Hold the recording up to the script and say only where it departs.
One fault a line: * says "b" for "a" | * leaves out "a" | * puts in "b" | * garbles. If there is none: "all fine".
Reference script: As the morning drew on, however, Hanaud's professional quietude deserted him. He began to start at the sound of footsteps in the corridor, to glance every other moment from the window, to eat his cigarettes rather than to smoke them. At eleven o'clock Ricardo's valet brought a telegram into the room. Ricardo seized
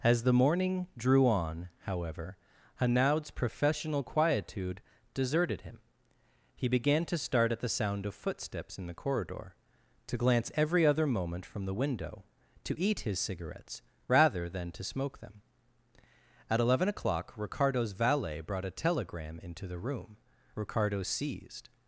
all fine